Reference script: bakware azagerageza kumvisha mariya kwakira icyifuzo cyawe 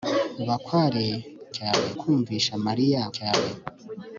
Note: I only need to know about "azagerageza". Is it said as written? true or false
false